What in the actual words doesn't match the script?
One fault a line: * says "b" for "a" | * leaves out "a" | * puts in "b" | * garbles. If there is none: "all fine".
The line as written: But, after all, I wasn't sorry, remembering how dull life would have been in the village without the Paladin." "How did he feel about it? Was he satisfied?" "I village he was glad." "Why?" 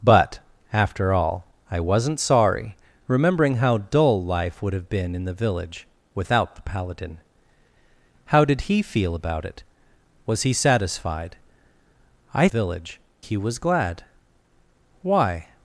all fine